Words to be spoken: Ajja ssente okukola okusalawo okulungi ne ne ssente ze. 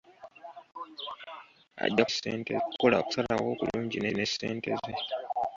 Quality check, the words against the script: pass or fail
pass